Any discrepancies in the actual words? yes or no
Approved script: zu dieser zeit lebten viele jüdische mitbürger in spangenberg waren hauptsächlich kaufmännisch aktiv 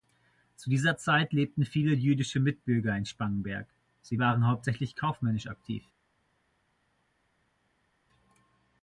yes